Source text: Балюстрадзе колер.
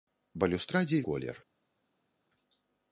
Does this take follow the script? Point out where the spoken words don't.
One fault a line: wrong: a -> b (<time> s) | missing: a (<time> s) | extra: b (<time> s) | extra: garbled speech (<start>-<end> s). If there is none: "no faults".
no faults